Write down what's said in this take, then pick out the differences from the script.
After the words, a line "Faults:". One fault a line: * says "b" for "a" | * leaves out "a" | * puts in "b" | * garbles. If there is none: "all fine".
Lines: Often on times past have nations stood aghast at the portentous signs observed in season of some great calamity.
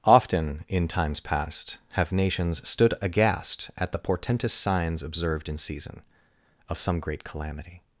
Often in times past have nations stood aghast at the portentous signs observed in season of some great calamity.
Faults:
* says "in" for "on"